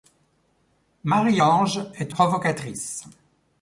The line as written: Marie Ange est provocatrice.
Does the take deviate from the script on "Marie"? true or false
false